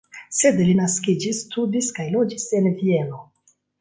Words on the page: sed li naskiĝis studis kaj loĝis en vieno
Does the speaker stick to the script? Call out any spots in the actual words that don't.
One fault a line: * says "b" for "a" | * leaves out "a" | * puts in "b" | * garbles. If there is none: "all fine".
all fine